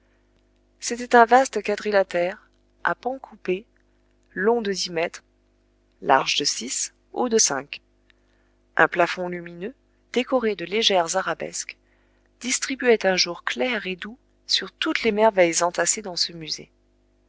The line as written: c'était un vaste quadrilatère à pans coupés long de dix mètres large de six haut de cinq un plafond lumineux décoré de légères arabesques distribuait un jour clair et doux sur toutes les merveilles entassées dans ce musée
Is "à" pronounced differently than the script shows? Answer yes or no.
no